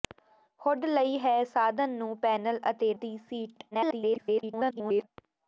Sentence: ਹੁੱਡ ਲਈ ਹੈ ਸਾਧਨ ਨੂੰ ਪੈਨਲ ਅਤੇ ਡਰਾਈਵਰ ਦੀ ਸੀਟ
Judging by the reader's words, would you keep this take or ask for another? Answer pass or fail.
fail